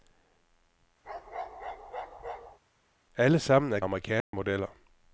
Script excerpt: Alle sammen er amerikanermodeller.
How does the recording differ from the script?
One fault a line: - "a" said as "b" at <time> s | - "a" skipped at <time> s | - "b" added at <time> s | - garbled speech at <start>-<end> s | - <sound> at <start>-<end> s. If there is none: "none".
- bark at 1.0-2.6 s
- dropout at 4.2-4.3 s